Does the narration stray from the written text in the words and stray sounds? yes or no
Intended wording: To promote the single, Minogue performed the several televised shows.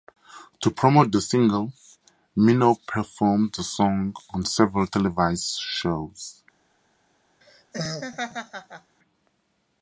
yes